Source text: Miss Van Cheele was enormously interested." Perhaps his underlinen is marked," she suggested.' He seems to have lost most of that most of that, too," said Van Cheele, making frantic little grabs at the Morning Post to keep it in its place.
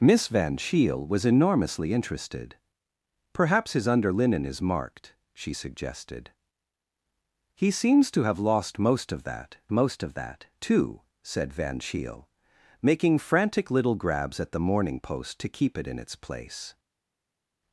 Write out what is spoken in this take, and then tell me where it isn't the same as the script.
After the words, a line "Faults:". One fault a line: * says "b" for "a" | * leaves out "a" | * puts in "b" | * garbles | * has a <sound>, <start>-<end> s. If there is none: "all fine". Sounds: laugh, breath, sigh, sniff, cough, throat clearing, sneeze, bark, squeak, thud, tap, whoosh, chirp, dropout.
Miss Van Cheele was enormously interested." Perhaps his underlinen is marked," she suggested.' He seems to have lost most of that most of that, too," said Van Cheele, making frantic little grabs at the Morning Post to keep it in its place.
Faults:
all fine